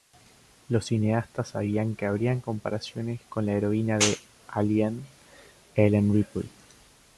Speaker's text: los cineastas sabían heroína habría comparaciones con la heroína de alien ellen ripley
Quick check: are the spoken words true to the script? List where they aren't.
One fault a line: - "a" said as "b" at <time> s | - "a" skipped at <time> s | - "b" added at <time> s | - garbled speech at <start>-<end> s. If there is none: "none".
- "heroína" said as "que" at 1.9 s